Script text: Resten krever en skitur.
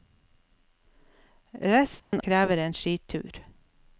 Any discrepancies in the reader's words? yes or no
no